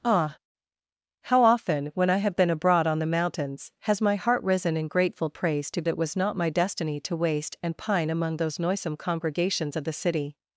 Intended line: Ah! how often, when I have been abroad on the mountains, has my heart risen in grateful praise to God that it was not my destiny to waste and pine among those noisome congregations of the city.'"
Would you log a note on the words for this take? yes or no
yes